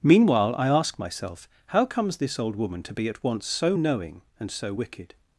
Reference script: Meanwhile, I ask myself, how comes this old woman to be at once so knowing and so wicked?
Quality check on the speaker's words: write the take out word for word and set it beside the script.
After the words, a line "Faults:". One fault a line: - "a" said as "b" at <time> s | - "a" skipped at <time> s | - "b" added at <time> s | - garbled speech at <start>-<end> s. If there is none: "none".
Meanwhile, I ask myself, how comes this old woman to be at once so knowing and so wicked?
Faults:
none